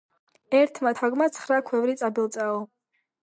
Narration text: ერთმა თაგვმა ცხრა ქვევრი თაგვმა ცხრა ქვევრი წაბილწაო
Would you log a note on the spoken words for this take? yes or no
yes